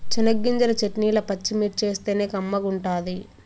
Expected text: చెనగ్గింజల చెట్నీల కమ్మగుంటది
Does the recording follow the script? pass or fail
fail